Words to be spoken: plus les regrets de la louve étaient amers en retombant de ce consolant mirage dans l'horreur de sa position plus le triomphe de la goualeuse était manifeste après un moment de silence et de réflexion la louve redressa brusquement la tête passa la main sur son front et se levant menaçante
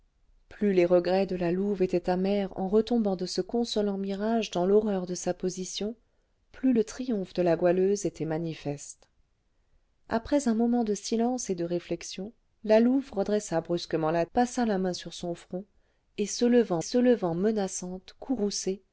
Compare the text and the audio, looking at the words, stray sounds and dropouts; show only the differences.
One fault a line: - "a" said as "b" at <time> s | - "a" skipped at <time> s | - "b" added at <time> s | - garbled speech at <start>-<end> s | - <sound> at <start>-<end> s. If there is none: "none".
- "tête" skipped at 14.3 s
- "se levant" added at 16.8 s